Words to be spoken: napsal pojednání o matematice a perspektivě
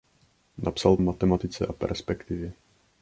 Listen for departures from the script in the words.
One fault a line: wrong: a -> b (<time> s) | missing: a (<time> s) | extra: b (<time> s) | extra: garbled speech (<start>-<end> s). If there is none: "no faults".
missing: pojednání (1.0 s)